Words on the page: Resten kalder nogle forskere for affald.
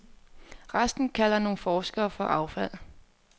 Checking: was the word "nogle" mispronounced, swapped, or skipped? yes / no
no